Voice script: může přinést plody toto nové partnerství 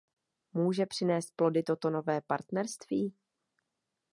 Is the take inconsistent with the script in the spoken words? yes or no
no